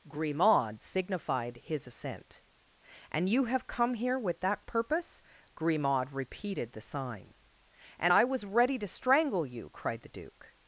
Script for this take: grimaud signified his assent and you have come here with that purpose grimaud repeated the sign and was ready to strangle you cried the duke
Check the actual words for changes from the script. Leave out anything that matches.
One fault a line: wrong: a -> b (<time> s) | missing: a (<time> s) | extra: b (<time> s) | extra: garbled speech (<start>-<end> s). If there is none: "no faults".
extra: i (8.1 s)